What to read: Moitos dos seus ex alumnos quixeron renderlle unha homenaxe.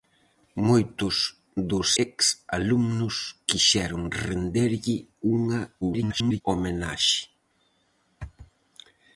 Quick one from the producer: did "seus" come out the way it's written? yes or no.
no